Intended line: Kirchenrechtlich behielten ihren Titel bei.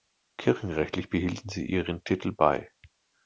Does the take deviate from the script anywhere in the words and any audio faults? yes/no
yes